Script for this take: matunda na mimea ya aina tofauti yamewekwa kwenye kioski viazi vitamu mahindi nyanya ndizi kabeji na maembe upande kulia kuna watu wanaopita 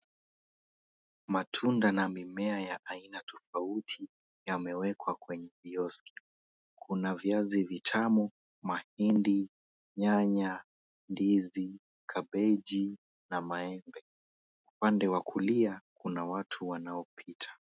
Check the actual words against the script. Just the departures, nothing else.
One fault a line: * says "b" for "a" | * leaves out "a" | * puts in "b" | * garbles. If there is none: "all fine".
* puts in "kuna"
* puts in "wa"